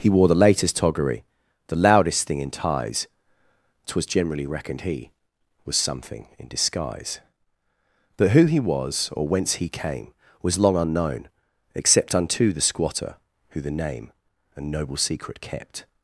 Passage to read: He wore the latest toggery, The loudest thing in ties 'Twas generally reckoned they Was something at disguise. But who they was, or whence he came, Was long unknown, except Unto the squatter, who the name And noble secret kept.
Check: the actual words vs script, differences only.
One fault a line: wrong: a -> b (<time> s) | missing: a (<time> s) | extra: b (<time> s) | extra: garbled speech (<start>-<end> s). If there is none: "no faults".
wrong: they -> he (4.8 s)
wrong: at -> in (6.4 s)
wrong: they -> he (8.5 s)